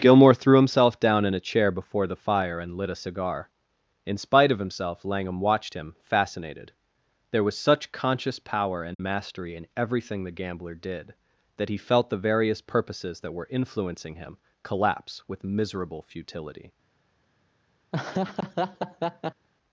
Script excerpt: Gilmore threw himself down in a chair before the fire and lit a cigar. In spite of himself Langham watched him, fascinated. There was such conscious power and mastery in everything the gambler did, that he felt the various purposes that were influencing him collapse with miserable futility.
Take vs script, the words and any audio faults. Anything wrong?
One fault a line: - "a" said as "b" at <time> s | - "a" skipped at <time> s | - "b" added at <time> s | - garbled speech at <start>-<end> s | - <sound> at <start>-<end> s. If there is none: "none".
- dropout at 8.9-9.0 s
- laugh at 17.9-19.5 s